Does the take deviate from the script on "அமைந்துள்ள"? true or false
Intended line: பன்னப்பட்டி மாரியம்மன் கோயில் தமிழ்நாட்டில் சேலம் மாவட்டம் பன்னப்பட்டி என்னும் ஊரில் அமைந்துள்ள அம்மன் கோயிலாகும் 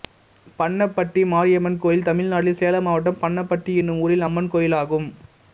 true